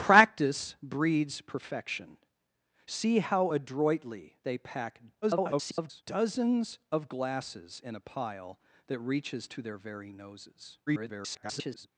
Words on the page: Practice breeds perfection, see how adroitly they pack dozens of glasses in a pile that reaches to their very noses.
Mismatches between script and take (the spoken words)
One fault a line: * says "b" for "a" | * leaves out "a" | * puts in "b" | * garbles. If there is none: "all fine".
* garbles
* garbles